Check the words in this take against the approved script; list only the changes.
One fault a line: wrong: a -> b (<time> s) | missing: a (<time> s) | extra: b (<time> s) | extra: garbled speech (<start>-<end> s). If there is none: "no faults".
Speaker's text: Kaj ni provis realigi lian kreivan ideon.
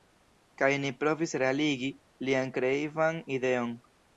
no faults